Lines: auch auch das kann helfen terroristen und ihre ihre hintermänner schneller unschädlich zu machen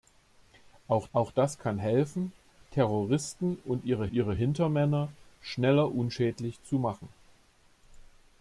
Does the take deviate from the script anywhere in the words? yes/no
no